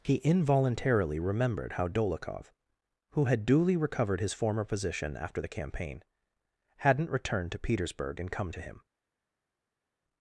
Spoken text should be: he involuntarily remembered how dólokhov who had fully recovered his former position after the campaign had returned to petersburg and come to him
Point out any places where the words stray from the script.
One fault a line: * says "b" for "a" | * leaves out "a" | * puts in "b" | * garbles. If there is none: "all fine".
* says "duly" for "fully"
* says "hadn't" for "had"